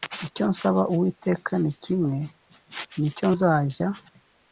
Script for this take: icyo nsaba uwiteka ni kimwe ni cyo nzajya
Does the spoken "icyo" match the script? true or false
true